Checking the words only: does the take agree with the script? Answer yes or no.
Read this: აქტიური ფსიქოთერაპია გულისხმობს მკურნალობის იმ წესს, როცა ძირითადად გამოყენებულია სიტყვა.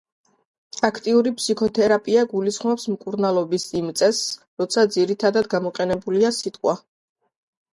yes